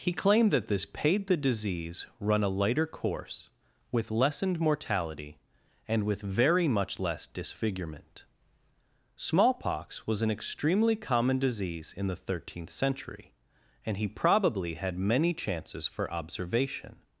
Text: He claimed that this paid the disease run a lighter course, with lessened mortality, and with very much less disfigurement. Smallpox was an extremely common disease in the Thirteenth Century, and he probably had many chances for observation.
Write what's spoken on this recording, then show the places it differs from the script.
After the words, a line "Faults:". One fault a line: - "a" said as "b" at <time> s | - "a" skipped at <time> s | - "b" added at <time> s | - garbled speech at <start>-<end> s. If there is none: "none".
He claimed that this paid the disease run a lighter course, with lessened mortality, and with very much less disfigurement. Smallpox was an extremely common disease in the Thirteenth Century, and he probably had many chances for observation.
Faults:
none